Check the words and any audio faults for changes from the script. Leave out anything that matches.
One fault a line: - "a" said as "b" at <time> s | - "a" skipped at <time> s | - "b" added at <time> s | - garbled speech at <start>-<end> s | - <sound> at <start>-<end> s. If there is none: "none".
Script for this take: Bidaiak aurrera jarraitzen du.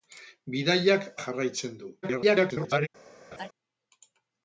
- "aurrera" skipped at 1.1 s
- garbled speech at 2.0-2.9 s
- laugh at 3.3-3.5 s